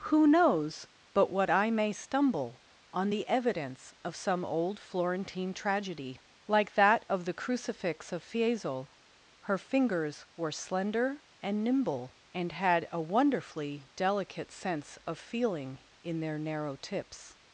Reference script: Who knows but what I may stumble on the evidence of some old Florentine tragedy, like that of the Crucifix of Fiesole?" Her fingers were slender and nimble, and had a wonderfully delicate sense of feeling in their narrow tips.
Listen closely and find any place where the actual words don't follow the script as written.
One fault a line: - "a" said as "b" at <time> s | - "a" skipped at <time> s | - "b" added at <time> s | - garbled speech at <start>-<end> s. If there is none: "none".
none